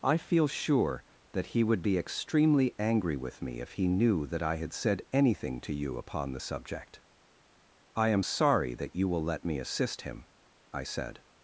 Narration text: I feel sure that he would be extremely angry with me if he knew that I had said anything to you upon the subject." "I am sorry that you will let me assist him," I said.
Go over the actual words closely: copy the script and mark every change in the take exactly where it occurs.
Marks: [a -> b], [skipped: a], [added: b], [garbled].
I feel sure that he would be extremely angry with me if he knew that I had said anything to you upon the subject." "I am sorry that you will let me assist him," I said.